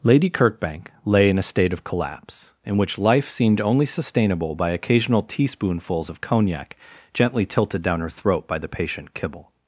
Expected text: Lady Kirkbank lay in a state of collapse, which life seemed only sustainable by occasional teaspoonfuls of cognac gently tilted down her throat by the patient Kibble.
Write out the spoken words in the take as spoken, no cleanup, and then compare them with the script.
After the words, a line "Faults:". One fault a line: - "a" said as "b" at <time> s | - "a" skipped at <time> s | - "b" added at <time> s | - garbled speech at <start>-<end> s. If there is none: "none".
Lady Kirkbank lay in a state of collapse, in which life seemed only sustainable by occasional teaspoonfuls of cognac gently tilted down her throat by the patient Kibble.
Faults:
- "in" added at 2.6 s